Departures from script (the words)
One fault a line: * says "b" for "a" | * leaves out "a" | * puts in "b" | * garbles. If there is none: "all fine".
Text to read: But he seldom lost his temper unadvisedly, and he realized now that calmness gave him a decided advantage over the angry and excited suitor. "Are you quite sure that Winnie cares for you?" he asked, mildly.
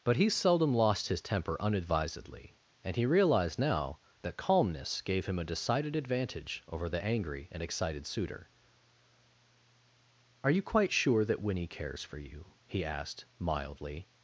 all fine